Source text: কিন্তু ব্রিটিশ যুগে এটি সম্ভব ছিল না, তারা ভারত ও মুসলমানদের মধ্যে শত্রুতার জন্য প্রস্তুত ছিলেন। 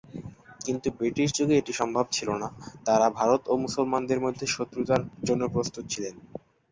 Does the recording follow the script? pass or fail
pass